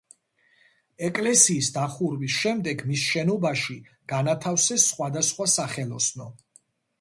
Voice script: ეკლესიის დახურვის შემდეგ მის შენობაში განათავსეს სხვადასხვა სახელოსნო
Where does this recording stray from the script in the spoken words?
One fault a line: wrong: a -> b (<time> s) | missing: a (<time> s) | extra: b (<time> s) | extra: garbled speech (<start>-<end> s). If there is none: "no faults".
no faults